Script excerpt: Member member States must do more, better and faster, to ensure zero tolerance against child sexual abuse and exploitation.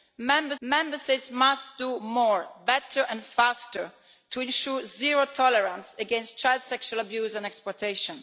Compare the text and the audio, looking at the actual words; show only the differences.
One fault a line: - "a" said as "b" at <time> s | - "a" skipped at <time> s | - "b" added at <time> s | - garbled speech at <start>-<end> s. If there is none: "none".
none